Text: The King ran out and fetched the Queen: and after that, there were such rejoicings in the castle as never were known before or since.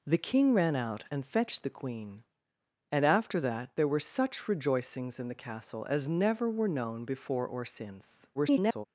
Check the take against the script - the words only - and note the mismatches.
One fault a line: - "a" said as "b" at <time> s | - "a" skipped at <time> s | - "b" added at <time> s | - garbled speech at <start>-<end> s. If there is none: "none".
- garbled speech at 8.3-8.9 s